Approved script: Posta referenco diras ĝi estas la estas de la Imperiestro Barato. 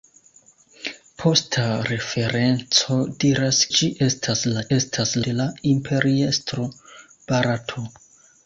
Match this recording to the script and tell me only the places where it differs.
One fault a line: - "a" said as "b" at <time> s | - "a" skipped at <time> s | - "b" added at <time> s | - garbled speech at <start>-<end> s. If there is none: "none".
none